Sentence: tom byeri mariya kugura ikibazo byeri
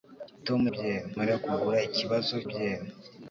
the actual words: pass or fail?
pass